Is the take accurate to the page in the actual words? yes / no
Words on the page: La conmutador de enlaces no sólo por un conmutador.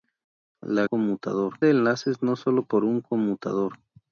yes